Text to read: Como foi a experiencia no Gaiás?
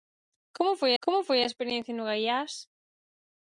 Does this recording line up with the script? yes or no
no